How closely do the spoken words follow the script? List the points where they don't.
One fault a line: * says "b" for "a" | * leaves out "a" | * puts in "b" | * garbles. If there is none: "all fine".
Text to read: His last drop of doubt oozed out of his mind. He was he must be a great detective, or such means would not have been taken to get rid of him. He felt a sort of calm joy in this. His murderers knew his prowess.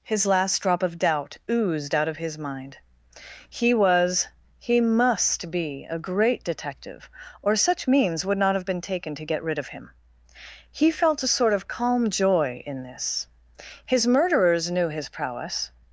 all fine